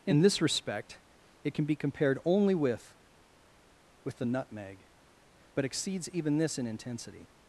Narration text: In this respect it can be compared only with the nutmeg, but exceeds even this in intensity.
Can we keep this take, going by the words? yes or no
no